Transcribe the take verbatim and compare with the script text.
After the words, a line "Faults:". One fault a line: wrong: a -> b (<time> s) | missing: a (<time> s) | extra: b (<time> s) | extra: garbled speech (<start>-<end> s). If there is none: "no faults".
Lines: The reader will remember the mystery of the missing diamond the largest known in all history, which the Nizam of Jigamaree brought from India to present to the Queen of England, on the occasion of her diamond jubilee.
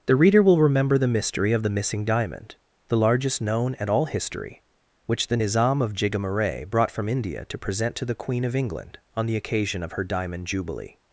The reader will remember the mystery of the missing diamond the largest known at all history, which the Nizam of Jigamaree brought from India to present to the Queen of England, on the occasion of her diamond jubilee.
Faults:
wrong: in -> at (3.8 s)